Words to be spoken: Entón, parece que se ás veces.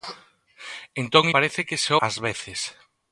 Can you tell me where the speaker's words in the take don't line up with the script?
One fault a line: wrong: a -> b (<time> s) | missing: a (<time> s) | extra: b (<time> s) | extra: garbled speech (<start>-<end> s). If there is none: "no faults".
no faults